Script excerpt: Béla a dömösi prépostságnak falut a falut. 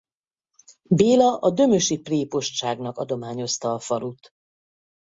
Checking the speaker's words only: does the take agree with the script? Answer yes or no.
no